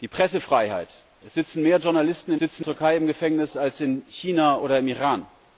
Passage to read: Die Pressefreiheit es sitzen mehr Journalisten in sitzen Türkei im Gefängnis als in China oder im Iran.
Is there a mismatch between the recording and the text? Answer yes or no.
no